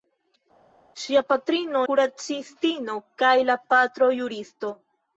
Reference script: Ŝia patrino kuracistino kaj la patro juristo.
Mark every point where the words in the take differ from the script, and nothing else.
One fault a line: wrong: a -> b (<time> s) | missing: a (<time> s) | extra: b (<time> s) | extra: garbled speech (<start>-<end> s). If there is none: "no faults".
no faults